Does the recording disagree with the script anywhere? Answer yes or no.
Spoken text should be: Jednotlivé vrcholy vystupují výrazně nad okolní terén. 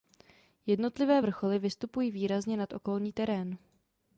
no